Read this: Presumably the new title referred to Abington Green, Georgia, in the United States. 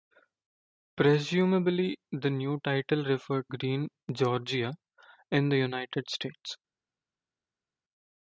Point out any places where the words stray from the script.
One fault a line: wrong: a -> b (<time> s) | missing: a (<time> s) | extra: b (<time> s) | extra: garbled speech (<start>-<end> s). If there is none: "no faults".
missing: to Abington (3.5 s)